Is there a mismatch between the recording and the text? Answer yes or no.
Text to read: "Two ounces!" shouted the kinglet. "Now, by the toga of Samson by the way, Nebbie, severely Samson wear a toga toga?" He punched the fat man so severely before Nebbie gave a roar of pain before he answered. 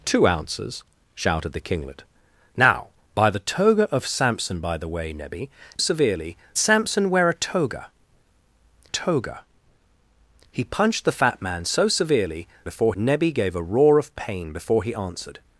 no